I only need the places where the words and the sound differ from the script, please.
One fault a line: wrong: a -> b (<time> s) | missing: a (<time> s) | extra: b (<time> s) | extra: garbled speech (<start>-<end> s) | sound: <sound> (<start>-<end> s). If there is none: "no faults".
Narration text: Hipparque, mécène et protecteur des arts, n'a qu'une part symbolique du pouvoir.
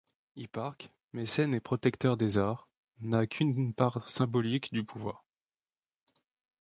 no faults